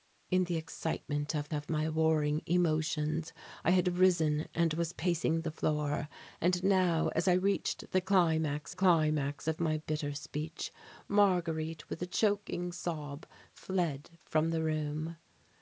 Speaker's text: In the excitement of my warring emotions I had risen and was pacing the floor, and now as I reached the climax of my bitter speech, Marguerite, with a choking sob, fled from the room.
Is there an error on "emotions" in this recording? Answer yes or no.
no